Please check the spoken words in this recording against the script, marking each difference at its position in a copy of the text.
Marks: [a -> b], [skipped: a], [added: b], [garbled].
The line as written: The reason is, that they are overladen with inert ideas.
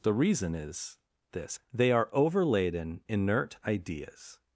The reason is, [that -> this] they are overladen [skipped: with] inert ideas.